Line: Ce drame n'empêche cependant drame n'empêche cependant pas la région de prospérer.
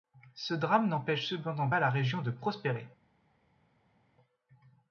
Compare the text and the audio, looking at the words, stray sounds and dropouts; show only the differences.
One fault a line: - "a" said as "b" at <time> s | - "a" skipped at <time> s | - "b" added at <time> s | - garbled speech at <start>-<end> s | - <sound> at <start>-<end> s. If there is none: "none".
- "drame n'empêche cependant" skipped at 1.7 s